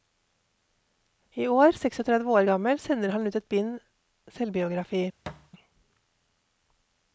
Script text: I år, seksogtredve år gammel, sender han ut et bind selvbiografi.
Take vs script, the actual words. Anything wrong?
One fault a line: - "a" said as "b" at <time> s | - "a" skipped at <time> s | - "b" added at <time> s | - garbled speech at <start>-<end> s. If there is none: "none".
none